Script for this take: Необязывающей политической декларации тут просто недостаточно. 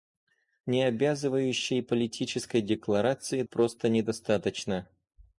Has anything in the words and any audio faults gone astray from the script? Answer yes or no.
yes